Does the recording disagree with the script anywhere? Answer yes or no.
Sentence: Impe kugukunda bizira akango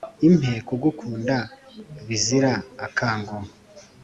no